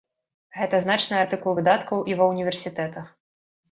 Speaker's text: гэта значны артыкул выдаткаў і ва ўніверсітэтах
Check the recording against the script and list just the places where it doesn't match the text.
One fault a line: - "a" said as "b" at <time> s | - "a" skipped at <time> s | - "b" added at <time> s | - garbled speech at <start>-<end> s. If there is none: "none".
none